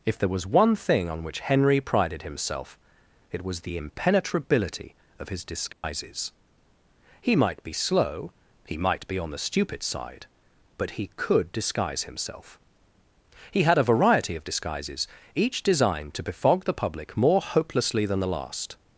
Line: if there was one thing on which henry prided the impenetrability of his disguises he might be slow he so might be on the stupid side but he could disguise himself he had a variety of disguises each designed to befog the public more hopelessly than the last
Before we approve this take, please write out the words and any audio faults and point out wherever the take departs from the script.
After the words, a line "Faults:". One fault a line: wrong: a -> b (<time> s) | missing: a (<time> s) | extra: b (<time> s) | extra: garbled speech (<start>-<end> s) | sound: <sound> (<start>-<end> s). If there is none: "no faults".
if there was one thing on which henry prided himself it was the impenetrability of his disguises he might be slow he might be on the stupid side but he could disguise himself he had a variety of disguises each designed to befog the public more hopelessly than the last
Faults:
extra: himself it was (2.2 s)
sound: dropout (5.7-5.8 s)
missing: so (8.8 s)